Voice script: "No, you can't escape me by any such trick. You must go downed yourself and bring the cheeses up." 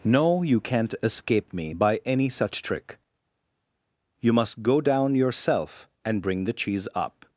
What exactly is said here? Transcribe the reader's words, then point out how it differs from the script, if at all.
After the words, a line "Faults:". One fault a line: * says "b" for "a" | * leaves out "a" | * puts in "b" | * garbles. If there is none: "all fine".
"No, you can't escape me by any such trick. You must go down yourself and bring the cheese up."
Faults:
* says "down" for "downed"
* says "cheese" for "cheeses"